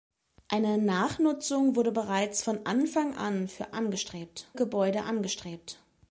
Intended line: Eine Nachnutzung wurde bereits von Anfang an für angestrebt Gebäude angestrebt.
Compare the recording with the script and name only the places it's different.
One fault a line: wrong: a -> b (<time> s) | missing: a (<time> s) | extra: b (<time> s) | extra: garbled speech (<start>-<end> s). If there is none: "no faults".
no faults